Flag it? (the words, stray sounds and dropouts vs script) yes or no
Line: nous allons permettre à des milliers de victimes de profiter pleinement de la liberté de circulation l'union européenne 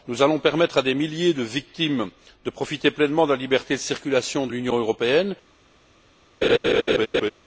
yes